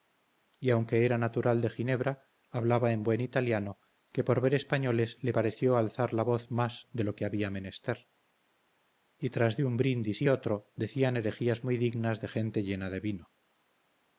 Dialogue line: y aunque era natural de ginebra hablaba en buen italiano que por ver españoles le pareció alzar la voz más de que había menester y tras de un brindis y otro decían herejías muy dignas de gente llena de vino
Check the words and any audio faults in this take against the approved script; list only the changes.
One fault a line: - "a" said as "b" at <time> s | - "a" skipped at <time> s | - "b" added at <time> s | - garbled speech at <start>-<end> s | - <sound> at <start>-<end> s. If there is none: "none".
- "lo" added at 7.0 s